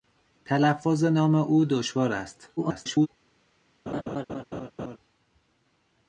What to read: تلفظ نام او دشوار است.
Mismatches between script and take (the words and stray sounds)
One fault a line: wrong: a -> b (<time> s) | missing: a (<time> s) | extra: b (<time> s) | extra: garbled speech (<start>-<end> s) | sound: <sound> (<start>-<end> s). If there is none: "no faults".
extra: garbled speech (2.6-3.1 s)
sound: laugh (3.9-5.0 s)